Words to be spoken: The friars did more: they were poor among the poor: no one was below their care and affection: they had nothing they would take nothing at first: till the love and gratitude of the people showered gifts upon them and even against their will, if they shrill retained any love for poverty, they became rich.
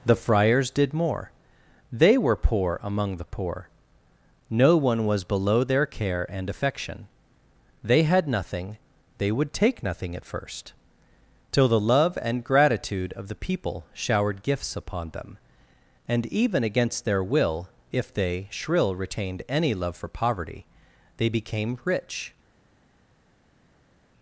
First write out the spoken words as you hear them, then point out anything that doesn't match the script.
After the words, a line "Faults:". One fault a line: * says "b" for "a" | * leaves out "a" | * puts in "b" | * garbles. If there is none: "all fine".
The friars did more: they were poor among the poor: no one was below their care and affection: they had nothing they would take nothing at first: till the love and gratitude of the people showered gifts upon them and even against their will, if they shrill retained any love for poverty, they became rich.
Faults:
all fine